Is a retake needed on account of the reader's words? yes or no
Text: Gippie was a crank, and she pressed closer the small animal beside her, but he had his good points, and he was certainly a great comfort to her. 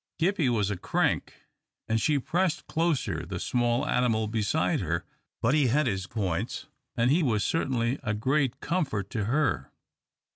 yes